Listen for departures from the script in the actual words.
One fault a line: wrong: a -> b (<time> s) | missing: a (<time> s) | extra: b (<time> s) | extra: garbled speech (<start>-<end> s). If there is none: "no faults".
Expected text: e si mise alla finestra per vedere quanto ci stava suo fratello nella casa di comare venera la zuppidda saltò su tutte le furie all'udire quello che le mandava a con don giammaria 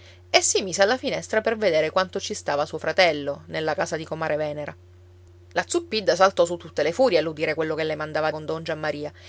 no faults